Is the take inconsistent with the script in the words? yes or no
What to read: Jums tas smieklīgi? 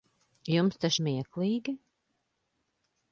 no